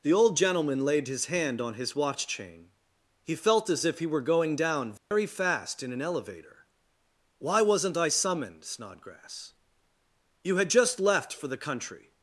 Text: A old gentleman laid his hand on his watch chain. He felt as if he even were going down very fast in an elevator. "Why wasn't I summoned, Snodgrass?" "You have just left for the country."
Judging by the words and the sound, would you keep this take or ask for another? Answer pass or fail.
fail